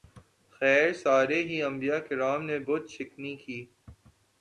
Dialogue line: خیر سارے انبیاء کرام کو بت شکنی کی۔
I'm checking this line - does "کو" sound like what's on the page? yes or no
no